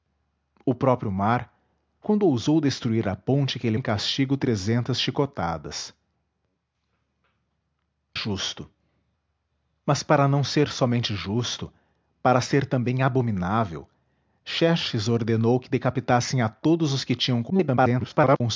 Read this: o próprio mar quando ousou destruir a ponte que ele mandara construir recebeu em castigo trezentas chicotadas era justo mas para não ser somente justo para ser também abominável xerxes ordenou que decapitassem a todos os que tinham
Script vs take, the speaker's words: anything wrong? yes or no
yes